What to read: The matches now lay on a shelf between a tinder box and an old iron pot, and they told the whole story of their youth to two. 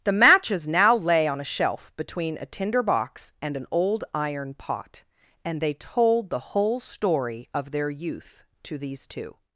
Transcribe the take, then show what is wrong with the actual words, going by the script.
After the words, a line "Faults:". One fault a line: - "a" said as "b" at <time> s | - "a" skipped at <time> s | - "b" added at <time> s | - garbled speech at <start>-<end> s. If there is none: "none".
The matches now lay on a shelf between a tinder box and an old iron pot, and they told the whole story of their youth to these two.
Faults:
- "these" added at 8.8 s